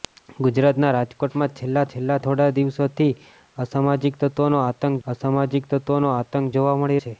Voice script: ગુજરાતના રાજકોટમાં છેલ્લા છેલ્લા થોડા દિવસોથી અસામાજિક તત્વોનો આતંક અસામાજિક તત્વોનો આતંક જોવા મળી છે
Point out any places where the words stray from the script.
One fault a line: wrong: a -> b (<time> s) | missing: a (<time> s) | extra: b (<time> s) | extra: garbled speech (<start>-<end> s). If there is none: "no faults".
no faults